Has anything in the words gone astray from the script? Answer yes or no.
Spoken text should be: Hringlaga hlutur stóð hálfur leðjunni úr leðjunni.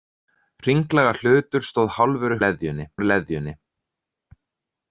no